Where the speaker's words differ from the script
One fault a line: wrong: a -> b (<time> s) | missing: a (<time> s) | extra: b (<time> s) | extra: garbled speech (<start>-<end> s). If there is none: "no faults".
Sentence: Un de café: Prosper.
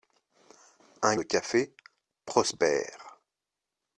no faults